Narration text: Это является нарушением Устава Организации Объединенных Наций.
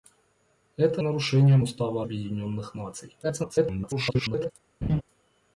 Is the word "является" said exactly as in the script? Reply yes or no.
no